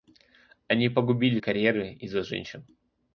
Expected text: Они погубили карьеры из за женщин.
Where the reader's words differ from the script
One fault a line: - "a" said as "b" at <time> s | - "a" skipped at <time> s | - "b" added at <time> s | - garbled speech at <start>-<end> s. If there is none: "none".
none